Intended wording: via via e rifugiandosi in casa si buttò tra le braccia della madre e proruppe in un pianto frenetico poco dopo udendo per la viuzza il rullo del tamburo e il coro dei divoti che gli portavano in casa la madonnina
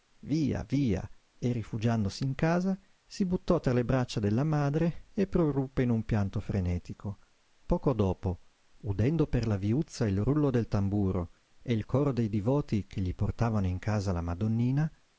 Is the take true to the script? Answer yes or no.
yes